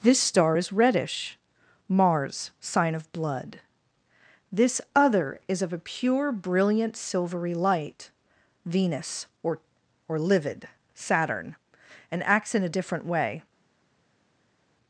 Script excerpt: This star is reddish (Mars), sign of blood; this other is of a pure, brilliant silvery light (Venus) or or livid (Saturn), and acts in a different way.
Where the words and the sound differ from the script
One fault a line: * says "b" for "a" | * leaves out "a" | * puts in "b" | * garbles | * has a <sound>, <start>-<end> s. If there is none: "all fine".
all fine